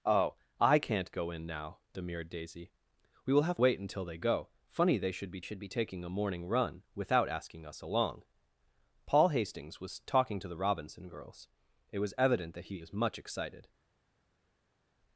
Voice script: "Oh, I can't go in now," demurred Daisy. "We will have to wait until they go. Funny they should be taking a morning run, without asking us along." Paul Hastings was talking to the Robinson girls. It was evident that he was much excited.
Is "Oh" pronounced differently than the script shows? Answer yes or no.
no